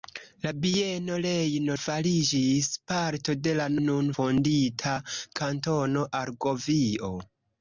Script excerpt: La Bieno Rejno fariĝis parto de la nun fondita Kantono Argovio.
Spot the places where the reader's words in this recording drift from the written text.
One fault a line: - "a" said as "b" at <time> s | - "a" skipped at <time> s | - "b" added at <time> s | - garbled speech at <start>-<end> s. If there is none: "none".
none